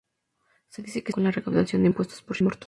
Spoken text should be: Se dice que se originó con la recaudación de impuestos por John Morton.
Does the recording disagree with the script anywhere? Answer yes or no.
yes